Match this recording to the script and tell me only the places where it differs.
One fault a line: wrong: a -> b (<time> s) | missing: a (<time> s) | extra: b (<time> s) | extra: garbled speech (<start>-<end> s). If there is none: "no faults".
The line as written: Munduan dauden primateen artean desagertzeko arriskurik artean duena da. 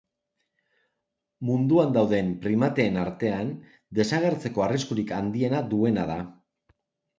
wrong: artean -> handiena (5.2 s)